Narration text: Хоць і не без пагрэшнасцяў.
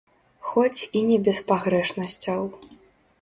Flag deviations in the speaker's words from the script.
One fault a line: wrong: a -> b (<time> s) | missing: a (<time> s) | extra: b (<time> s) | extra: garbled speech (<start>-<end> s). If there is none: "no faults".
no faults